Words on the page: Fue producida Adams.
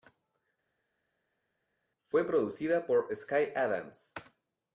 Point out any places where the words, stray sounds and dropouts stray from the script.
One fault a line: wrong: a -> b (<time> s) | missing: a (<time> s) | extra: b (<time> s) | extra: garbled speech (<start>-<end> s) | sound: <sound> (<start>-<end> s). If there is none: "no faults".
extra: por Sky (2.9 s)